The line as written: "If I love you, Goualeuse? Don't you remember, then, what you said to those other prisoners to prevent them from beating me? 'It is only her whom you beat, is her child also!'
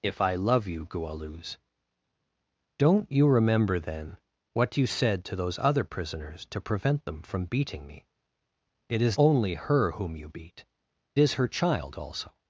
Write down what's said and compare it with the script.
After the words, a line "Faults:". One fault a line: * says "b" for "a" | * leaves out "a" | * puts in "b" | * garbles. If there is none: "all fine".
"If I love you, Goualeuse? Don't you remember, then, what you said to those other prisoners to prevent them from beating me? 'It is only her whom you beat, is her child also!'
Faults:
all fine